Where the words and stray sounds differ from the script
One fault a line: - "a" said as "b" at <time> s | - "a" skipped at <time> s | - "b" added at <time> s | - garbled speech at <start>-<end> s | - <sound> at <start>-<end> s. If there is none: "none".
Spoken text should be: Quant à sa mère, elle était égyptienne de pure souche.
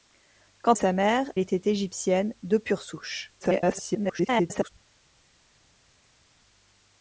- "à" skipped at 0.7 s
- "elle" skipped at 1.3 s
- garbled speech at 3.4-4.7 s